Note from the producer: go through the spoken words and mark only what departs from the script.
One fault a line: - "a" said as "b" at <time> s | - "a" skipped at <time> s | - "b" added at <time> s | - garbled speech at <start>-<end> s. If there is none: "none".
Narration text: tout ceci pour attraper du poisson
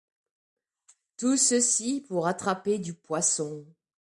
none